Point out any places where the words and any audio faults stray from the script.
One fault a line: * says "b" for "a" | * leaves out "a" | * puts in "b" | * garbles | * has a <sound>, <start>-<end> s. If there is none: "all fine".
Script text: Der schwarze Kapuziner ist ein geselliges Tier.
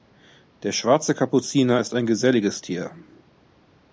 all fine